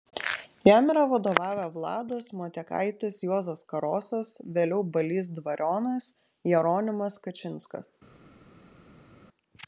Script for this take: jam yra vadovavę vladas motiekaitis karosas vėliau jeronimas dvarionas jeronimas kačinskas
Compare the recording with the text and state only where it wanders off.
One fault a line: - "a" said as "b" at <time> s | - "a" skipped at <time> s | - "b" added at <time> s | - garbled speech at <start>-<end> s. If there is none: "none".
- "juozas" added at 3.3 s
- "jeronimas" said as "balys" at 5.0 s